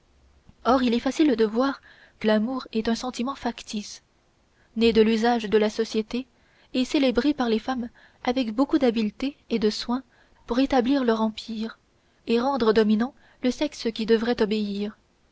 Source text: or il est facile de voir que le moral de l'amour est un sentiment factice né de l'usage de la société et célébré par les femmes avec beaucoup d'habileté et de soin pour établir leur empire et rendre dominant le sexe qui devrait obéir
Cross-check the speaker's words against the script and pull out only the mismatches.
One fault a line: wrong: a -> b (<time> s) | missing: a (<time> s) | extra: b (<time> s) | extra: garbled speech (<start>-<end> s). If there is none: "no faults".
missing: le moral de (2.3 s)